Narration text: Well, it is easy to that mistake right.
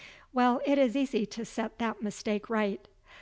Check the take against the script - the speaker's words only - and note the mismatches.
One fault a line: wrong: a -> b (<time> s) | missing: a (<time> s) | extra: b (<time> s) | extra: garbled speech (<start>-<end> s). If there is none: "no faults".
extra: set (1.4 s)